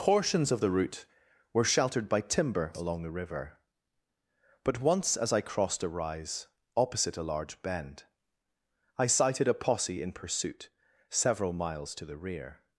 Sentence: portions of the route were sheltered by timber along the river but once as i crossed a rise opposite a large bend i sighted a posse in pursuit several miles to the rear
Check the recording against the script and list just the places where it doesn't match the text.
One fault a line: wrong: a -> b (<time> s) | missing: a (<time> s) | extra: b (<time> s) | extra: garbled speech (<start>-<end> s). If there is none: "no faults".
no faults